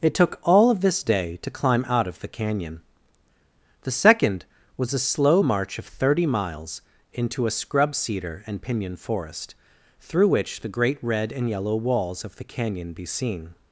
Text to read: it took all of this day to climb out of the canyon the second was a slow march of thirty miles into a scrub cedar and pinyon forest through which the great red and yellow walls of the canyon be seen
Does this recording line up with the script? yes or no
yes